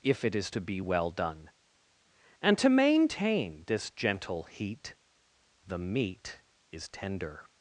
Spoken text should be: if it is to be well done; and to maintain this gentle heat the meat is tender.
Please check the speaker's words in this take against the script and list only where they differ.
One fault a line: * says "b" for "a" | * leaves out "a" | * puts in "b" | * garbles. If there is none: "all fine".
all fine